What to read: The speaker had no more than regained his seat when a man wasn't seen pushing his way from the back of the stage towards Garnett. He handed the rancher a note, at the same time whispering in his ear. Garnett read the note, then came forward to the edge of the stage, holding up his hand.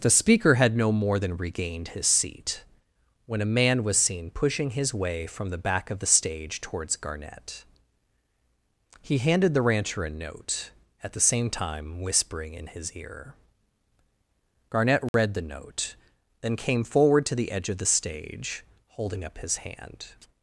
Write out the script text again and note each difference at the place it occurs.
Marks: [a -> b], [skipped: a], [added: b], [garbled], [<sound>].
The speaker had no more than regained his seat when a man [wasn't -> was] seen pushing his way from the back of the stage towards Garnett. He handed the rancher a note, at the same time whispering in his ear. Garnett read [dropout] the note, then came forward to the edge of the stage, holding up his hand.